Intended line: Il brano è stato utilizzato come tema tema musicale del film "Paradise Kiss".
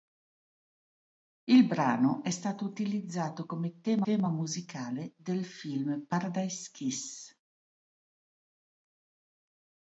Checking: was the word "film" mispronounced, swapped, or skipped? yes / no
no